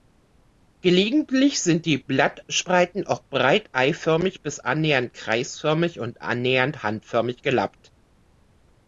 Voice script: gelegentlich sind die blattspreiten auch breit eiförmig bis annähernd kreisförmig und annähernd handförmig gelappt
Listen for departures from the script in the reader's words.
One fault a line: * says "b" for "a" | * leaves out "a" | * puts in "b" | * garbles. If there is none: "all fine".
all fine